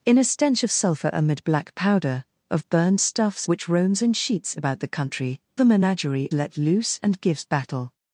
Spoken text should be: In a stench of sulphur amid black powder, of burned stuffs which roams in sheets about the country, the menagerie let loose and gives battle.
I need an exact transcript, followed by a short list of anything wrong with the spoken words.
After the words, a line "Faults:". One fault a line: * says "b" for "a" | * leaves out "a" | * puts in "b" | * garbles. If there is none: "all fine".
In a stench of sulphur amid black powder, of burned stuffs which roams in sheets about the country, the menagerie let loose and gives battle.
Faults:
all fine